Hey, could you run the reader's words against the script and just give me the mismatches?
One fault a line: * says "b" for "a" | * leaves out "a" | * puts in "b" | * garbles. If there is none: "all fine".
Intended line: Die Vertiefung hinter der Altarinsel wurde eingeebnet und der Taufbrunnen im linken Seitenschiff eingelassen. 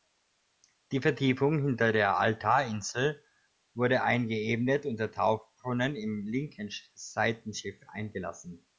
all fine